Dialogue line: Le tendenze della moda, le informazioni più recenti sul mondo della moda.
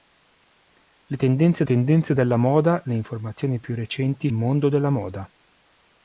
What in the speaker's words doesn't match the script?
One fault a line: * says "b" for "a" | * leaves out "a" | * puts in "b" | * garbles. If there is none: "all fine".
* puts in "tendenze"
* leaves out "sul"